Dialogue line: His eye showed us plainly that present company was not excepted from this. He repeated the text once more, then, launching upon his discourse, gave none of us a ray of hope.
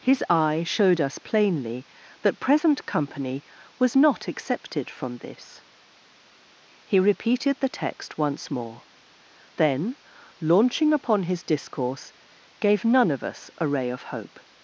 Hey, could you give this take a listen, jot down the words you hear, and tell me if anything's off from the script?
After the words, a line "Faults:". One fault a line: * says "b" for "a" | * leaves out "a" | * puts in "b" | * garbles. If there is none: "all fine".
His eye showed us plainly that present company was not excepted from this. He repeated the text once more, then, launching upon his discourse, gave none of us a ray of hope.
Faults:
all fine